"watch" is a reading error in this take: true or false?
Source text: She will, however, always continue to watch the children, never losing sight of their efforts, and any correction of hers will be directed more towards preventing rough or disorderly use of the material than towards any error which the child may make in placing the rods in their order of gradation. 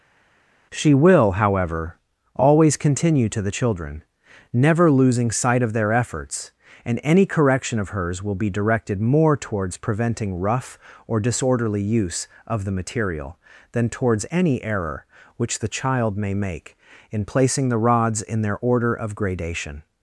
true